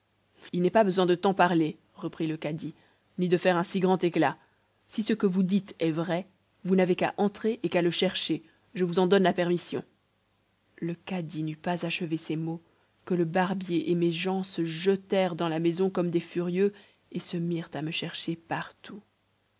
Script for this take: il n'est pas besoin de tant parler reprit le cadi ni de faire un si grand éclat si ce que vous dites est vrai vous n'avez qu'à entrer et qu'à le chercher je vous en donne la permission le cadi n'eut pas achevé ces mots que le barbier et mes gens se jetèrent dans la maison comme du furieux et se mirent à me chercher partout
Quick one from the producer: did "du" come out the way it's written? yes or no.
no